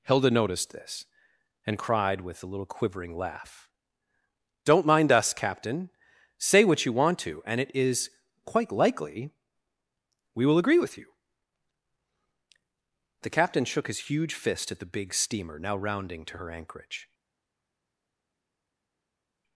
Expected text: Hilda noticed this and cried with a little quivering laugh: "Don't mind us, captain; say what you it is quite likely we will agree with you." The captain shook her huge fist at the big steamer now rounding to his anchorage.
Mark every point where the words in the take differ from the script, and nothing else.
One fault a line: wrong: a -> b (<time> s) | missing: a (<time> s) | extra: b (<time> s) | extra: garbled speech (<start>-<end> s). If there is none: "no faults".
extra: want to and (6.9 s)
wrong: her -> his (13.9 s)
wrong: his -> her (16.4 s)